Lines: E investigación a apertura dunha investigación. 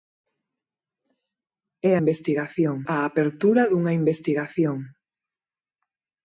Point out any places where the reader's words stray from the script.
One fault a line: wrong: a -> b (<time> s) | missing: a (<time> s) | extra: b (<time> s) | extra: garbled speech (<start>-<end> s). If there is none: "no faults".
no faults